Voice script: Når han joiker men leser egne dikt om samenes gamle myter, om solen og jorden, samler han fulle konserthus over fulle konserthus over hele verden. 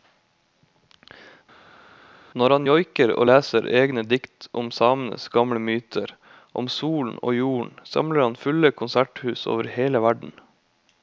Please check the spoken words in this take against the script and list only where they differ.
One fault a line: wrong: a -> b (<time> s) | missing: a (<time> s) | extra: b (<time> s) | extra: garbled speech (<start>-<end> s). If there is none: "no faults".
wrong: men -> og (3.1 s)
missing: fulle konserthus over (9.7 s)